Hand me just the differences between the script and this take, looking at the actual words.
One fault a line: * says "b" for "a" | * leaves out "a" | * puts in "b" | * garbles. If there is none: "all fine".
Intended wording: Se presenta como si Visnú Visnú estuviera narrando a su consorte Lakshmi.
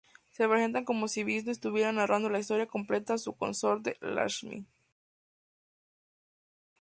* leaves out "Visnú"
* puts in "la historia completa"